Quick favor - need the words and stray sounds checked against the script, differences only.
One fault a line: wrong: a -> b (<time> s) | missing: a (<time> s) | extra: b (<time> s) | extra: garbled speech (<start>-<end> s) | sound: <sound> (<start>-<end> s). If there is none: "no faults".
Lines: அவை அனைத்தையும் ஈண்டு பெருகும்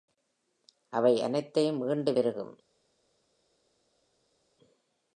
no faults